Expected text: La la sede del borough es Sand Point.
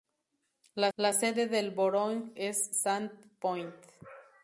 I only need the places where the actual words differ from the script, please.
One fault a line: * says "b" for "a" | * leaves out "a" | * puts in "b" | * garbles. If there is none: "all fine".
all fine